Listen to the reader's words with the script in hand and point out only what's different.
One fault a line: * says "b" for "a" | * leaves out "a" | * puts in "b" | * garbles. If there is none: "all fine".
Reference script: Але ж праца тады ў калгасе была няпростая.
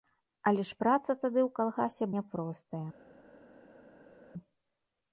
* leaves out "была"